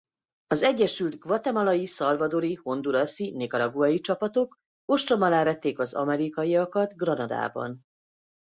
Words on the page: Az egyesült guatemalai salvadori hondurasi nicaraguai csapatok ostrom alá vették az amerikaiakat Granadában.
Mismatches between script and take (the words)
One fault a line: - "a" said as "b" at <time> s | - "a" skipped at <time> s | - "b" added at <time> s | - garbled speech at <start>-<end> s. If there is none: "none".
none